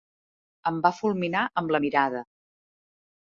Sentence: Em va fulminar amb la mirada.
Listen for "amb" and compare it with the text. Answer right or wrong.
right